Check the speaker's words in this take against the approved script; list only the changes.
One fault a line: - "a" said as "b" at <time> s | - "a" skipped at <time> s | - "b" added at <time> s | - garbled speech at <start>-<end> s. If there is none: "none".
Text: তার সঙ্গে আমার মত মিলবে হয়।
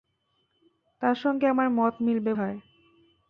none